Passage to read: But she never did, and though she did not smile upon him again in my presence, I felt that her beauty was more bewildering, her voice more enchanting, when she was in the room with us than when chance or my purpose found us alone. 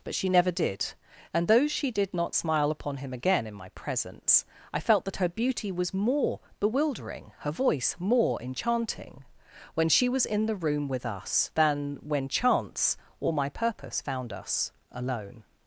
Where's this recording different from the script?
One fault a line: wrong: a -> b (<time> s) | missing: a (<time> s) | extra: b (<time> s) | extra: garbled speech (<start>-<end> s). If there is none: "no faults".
no faults